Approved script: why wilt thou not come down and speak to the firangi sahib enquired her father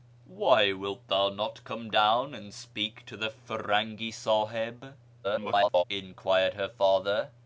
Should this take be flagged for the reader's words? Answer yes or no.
yes